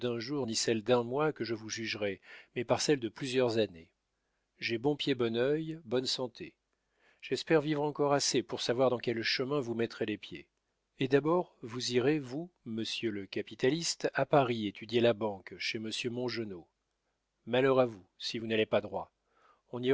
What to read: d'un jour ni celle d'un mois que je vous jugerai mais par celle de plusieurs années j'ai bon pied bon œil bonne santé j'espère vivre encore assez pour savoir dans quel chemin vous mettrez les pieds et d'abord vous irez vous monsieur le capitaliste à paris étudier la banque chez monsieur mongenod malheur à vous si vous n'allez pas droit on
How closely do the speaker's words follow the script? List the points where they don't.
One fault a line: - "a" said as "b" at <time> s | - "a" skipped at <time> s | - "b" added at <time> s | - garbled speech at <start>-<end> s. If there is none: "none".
none